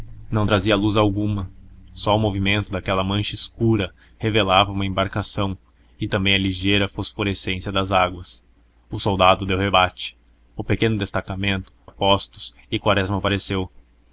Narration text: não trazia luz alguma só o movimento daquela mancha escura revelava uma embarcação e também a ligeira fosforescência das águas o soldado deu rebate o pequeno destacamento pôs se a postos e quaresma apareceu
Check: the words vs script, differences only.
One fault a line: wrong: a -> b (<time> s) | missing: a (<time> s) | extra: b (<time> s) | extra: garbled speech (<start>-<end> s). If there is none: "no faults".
missing: pôs se (11.7 s)